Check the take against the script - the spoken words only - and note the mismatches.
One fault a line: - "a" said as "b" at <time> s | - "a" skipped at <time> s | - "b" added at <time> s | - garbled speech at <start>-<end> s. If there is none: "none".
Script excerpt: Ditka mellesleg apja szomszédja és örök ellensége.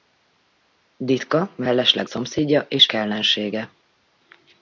- "apja" skipped at 2.1 s
- "örök" skipped at 2.9 s